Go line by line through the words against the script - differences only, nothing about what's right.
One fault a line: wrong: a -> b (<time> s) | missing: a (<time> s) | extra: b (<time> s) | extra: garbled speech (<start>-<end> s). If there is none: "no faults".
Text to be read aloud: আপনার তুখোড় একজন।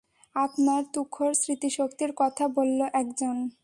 extra: স্মৃতিশক্তির কথা বলল (1.3 s)